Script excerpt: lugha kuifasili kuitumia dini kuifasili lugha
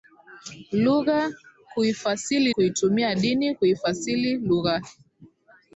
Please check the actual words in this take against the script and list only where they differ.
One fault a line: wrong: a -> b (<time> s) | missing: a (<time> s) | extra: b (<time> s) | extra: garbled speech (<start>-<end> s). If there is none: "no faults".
no faults